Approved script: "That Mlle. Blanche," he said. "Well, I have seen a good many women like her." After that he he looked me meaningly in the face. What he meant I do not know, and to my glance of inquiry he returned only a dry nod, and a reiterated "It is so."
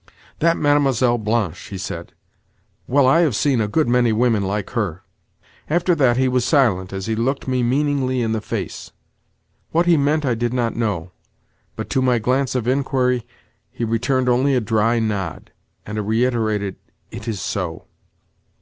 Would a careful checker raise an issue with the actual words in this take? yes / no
yes